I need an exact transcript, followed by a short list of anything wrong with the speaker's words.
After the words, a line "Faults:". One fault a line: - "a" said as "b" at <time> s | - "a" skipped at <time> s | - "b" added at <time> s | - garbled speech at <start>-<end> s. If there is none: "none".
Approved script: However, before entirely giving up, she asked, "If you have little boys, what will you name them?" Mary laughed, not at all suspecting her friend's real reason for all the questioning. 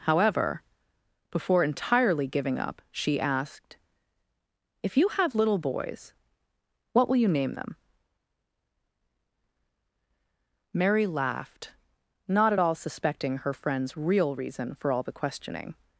However, before entirely giving up, she asked, "If you have little boys, what will you name them?" Mary laughed, not at all suspecting her friend's real reason for all the questioning.
Faults:
none